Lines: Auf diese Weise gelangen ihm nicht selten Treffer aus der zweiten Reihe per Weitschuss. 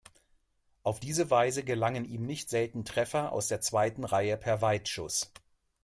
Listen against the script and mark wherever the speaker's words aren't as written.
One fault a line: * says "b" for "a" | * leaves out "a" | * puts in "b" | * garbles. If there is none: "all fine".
all fine